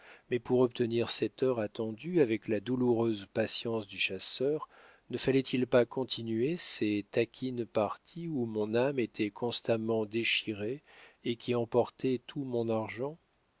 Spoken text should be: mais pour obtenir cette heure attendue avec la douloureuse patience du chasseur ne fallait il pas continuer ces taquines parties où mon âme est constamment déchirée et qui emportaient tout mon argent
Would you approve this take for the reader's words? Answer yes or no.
no